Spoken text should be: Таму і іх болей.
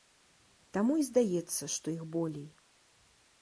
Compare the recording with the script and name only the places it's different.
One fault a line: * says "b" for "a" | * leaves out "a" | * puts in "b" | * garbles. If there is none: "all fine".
* puts in "здаецца што"